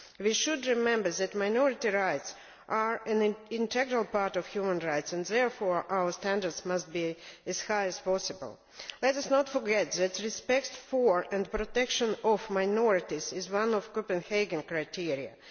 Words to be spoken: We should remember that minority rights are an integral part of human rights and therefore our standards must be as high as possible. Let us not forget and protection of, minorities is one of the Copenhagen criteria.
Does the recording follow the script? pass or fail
fail